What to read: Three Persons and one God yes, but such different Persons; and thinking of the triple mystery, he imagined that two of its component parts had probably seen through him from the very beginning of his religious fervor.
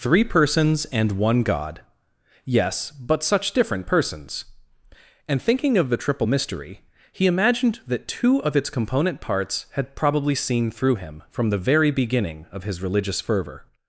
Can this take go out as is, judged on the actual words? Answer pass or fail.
pass